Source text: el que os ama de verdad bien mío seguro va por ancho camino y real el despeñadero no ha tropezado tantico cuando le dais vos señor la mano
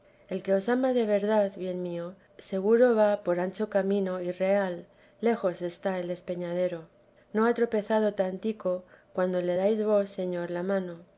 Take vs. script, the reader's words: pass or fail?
fail